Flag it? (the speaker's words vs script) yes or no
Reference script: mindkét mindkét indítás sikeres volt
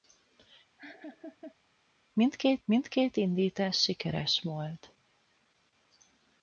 no